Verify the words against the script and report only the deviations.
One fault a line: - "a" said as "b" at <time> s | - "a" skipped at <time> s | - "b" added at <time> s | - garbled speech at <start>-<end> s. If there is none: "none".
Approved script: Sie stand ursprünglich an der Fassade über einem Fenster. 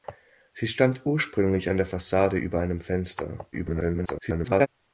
- garbled speech at 3.5-4.7 s